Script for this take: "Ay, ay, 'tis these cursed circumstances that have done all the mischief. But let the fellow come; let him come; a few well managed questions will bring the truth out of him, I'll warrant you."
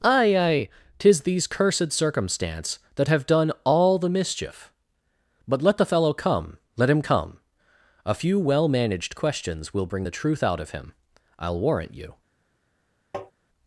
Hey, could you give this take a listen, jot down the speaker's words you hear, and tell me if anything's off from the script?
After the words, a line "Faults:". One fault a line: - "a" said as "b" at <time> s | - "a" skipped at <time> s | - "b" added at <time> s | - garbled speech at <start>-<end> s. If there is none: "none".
"Ay, ay, 'tis these cursed circumstance that have done all the mischief. But let the fellow come; let him come; a few well managed questions will bring the truth out of him, I'll warrant you."
Faults:
- "circumstances" said as "circumstance" at 1.9 s